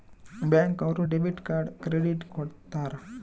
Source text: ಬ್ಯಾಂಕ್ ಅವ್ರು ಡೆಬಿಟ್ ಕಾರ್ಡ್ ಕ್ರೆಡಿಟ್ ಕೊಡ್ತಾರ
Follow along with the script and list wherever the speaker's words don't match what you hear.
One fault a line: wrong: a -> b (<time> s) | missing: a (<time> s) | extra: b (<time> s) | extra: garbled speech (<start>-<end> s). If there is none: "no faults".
no faults